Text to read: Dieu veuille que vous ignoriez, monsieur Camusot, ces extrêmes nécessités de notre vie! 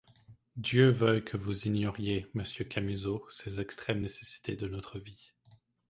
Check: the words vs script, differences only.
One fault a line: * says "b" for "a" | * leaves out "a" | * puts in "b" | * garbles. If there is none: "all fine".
all fine